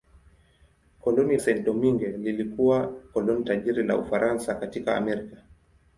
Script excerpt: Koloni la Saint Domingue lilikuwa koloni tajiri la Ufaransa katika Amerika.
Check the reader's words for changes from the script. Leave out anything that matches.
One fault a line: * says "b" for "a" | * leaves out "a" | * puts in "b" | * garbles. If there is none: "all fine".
* leaves out "la"